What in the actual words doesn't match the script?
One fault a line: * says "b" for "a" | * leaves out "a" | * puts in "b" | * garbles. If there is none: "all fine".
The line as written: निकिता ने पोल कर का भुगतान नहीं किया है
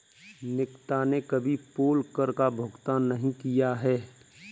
* puts in "कभी"